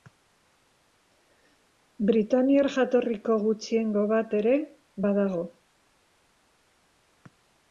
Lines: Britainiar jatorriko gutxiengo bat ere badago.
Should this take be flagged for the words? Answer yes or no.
no